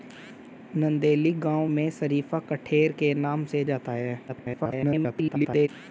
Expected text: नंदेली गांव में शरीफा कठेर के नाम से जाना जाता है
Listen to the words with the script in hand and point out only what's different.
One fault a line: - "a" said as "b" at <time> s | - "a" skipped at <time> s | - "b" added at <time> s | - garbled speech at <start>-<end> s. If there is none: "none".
- "जाना" skipped at 3.6 s
- garbled speech at 4.3-5.7 s